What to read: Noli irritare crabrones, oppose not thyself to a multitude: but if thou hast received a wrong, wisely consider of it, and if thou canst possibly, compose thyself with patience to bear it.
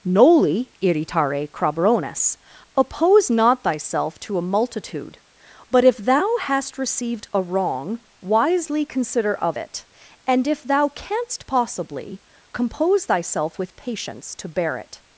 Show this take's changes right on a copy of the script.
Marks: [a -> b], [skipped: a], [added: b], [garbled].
Noli irritare crabrones, oppose not thyself to a multitude: but if thou hast received a wrong, wisely consider of it, and if thou canst possibly, compose thyself with patience to bear it.